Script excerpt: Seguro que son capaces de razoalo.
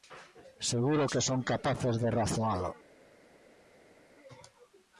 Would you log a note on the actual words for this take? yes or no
no